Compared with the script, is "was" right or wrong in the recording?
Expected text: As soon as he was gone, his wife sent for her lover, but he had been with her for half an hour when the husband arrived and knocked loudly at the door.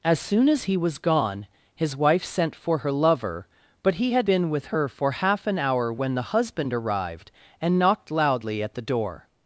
right